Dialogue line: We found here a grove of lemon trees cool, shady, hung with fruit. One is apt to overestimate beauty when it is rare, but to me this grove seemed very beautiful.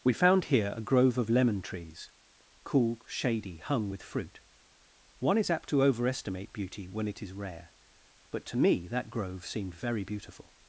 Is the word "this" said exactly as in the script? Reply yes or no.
no